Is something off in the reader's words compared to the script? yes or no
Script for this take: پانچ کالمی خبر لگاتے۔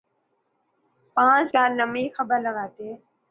no